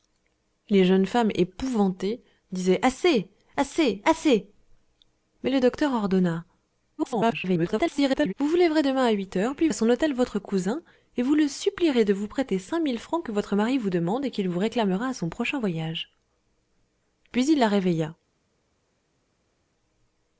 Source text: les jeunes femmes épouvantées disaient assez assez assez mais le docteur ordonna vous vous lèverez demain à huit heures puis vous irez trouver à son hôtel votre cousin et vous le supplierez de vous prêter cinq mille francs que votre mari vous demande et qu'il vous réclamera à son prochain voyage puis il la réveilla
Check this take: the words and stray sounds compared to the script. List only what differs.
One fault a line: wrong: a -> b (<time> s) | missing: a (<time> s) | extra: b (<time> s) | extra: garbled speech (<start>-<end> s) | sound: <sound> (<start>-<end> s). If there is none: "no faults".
extra: garbled speech (7.0-8.3 s)
missing: vous irez trouver (9.7 s)